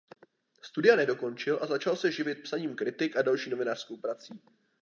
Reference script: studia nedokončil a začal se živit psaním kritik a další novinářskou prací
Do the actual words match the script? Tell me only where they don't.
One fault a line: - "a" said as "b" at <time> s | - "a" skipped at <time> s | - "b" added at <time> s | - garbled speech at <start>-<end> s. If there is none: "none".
none